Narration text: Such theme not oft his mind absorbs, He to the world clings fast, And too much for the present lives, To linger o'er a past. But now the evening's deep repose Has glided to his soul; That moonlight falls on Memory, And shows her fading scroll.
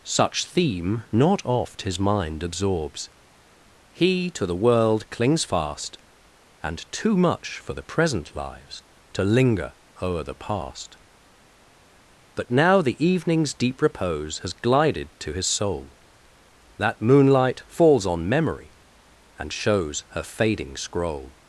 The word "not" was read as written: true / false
true